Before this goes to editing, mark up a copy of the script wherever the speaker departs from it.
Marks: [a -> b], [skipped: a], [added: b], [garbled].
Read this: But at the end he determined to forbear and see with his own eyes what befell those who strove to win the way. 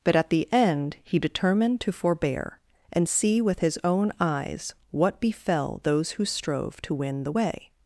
But at the end he determined to forbear and see with his own eyes what befell those who strove to win the way.